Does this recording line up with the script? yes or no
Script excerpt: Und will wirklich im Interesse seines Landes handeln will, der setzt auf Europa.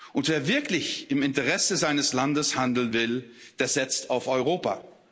no